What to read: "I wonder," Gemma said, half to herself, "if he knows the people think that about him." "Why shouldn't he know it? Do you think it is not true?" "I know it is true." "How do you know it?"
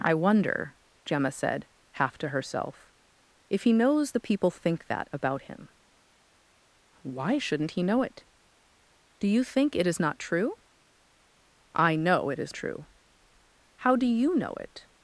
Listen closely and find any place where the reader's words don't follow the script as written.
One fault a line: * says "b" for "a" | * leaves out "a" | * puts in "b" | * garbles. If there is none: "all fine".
all fine